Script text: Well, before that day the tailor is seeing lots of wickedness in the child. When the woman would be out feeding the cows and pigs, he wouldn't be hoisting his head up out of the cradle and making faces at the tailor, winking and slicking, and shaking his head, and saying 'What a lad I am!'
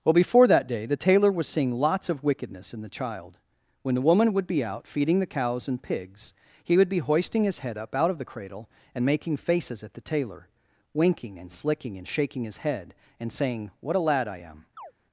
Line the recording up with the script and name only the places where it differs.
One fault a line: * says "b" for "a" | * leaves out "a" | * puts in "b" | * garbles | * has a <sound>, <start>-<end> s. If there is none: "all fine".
* says "was" for "is"
* says "would" for "wouldn't"
* has a chirp, 14.8-14.9 s